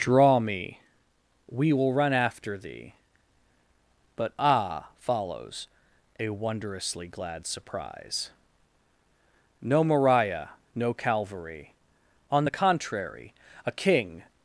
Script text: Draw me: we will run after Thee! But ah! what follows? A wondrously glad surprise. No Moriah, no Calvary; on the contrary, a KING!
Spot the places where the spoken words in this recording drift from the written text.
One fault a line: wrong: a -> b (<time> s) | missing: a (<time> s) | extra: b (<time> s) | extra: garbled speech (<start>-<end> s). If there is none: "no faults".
missing: what (4.9 s)